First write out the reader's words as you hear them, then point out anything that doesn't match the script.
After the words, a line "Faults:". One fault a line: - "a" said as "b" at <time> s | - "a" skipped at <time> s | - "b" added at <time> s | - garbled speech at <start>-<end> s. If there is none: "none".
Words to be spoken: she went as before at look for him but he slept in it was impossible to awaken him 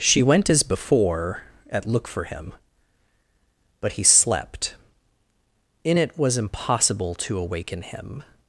she went as before at look for him but he slept in it was impossible to awaken him
Faults:
none